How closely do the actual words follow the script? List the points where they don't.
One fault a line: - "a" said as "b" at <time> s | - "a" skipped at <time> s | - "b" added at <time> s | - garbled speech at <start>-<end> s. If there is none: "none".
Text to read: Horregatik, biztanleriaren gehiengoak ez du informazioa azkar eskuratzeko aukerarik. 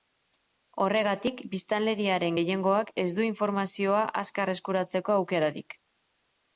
none